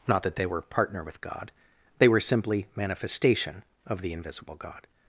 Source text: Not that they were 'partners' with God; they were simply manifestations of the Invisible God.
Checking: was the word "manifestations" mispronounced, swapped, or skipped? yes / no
yes